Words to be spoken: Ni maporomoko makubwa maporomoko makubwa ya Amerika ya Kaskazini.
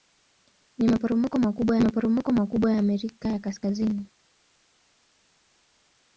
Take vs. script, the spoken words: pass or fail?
pass